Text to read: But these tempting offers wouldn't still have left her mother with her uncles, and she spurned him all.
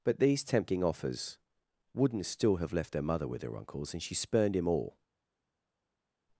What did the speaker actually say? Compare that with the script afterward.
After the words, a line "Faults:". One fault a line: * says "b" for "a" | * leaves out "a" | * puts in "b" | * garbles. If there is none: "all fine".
But these tempting offers wouldn't still have left her mother with her uncles, and she spurned him all.
Faults:
all fine